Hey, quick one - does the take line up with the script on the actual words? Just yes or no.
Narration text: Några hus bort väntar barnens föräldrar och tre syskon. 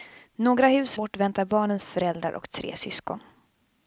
yes